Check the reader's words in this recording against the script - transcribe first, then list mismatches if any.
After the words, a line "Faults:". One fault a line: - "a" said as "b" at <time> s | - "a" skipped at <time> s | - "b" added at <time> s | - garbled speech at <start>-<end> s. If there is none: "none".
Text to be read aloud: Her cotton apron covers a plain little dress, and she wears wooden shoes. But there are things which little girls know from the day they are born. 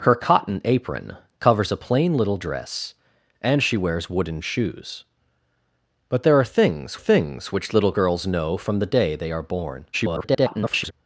Her cotton apron covers a plain little dress, and she wears wooden shoes. But there are things things which little girls know from the day they are born. [garbled]
Faults:
- "things" added at 6.9 s
- garbled speech at 9.9-10.9 s